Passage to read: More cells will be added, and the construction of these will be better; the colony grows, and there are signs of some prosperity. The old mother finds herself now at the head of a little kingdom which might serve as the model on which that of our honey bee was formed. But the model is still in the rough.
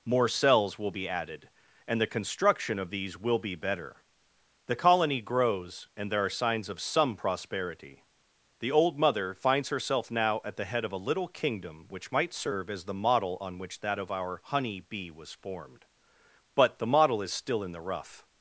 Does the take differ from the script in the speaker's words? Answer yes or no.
no